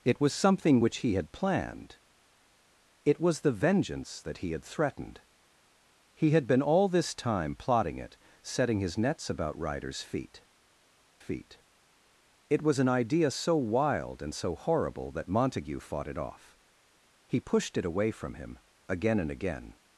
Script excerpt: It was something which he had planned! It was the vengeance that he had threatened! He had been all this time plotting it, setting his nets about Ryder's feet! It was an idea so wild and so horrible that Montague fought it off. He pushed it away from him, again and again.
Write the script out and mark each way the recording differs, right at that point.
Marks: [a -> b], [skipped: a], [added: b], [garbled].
It was something which he had planned! It was the vengeance that he had threatened! He had been all this time plotting it, setting his nets about Ryder's feet! [added: feet] It was an idea so wild and so horrible that Montague fought it off. He pushed it away from him, again and again.